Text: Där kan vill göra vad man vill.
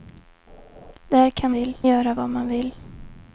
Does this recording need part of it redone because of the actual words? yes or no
no